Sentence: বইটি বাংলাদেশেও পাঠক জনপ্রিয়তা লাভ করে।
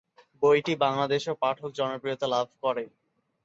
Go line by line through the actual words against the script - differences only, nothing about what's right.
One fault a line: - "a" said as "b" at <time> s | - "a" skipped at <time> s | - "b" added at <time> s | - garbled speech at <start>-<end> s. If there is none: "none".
none